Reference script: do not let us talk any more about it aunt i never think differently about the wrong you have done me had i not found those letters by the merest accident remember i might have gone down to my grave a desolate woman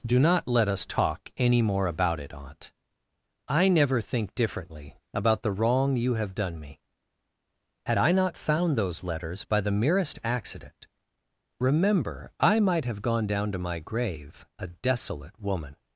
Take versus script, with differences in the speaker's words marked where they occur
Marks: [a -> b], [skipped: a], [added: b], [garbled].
do not let us talk any more about it aunt i never think differently about the wrong you have done me had i not found those letters by the merest accident remember i might have gone down to my grave a desolate woman